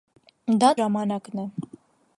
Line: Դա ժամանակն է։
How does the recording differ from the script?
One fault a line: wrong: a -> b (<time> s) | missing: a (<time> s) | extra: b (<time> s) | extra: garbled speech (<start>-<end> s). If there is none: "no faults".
no faults